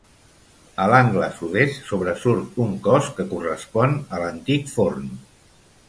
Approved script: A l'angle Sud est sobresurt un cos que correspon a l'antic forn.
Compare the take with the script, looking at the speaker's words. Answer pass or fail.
pass